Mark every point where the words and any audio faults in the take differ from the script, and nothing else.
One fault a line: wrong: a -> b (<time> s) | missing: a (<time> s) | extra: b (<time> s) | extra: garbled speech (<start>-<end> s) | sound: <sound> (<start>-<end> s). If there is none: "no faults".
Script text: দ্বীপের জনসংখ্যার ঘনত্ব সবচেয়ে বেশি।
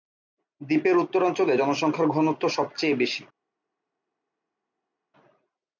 extra: উত্তরাঞ্চলে (1.0 s)